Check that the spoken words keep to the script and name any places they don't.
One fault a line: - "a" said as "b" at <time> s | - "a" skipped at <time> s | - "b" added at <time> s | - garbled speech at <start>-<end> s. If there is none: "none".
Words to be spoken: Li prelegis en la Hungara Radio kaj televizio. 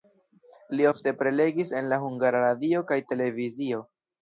- "ofte" added at 0.9 s